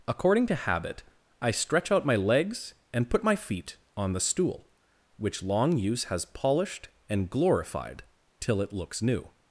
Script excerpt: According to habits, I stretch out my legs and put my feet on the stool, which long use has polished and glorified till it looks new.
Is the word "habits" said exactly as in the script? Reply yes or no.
no